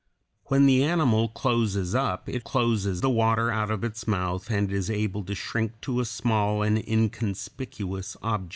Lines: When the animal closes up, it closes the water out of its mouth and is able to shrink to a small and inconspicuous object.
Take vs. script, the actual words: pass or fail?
pass